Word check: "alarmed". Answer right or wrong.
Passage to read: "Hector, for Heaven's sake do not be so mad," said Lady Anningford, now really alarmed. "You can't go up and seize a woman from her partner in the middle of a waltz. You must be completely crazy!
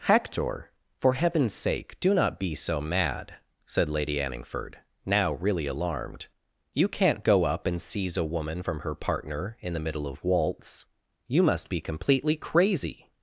right